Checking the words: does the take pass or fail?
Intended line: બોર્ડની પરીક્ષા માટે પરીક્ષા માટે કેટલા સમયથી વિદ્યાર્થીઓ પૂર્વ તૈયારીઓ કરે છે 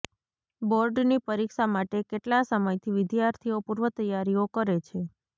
fail